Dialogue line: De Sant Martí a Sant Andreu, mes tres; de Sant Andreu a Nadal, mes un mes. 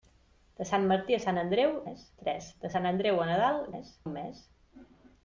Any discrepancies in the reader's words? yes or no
no